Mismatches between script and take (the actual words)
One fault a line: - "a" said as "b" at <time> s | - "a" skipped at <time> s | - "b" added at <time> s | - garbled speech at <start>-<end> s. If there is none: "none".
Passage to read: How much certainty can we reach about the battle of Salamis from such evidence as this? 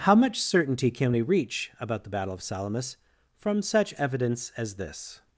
none